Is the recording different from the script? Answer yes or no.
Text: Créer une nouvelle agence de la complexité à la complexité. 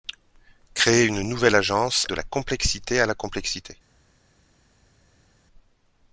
no